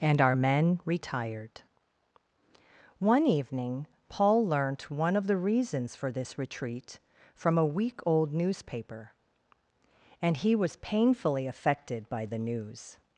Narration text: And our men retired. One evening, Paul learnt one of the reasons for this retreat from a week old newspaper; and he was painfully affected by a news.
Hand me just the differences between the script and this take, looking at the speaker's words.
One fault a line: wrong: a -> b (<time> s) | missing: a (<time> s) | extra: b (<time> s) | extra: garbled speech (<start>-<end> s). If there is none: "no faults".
wrong: a -> the (12.2 s)